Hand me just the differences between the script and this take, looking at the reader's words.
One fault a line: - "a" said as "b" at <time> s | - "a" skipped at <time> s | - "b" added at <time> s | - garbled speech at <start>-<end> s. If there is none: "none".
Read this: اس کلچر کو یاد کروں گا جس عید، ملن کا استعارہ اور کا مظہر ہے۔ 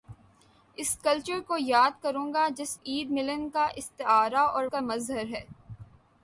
none